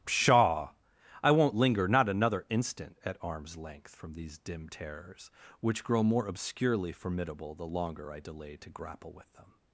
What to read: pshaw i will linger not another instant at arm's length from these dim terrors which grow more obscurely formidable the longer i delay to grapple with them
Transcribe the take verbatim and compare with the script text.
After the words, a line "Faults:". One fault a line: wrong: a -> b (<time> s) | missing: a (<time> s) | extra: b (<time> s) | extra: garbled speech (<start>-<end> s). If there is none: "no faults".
pshaw i won't linger not another instant at arm's length from these dim terrors which grow more obscurely formidable the longer i delay to grapple with them
Faults:
wrong: will -> won't (1.3 s)